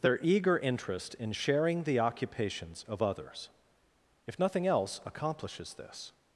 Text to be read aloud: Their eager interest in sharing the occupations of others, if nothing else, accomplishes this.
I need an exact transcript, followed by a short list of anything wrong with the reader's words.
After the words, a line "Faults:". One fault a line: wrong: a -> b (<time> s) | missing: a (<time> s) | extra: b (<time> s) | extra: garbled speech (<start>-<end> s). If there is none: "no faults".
Their eager interest in sharing the occupations of others, if nothing else, accomplishes this.
Faults:
no faults